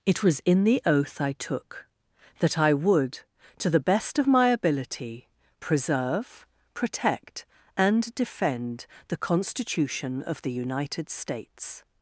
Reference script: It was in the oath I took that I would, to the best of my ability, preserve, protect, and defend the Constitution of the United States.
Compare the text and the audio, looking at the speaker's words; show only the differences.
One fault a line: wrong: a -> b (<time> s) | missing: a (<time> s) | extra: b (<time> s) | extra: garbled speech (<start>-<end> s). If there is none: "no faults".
no faults